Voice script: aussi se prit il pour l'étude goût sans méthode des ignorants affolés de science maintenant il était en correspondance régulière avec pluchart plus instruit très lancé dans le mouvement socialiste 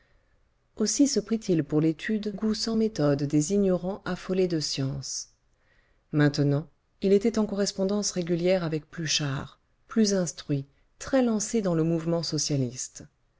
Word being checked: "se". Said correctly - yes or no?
yes